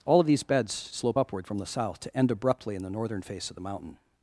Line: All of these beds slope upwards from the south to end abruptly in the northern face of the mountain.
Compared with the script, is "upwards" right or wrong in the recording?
wrong